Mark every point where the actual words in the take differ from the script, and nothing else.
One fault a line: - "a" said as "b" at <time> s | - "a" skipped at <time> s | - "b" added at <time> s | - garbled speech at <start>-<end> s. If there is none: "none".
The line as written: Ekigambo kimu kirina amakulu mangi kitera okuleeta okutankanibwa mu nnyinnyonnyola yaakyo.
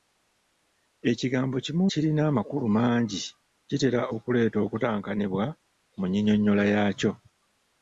none